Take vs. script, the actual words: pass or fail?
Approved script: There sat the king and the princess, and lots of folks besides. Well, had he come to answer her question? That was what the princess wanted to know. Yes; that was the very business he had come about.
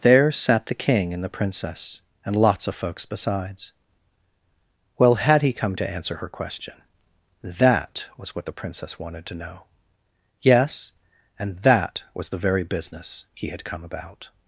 fail